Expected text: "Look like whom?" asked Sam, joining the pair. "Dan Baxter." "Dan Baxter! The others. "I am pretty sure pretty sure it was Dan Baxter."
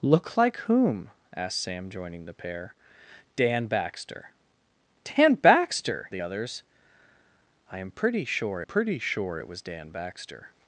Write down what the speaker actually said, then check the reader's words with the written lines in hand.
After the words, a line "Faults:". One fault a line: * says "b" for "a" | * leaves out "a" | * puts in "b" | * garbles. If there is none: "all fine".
"Look like whom?" asked Sam, joining the pair. "Dan Baxter." "Dan Baxter! The others. "I am pretty sure pretty sure it was Dan Baxter."
Faults:
all fine